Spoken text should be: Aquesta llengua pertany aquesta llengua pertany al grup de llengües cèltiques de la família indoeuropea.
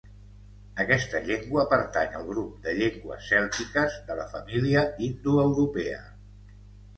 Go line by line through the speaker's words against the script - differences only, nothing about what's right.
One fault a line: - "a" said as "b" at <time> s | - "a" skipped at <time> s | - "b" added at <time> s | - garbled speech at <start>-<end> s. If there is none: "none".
- "aquesta llengua pertany" skipped at 2.1 s